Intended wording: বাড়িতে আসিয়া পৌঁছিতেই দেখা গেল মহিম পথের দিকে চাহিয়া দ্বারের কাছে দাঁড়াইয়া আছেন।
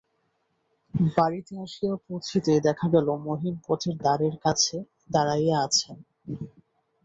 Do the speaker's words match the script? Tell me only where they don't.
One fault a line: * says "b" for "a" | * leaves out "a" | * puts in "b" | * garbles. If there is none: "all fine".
* leaves out "দিকে চাহিয়া"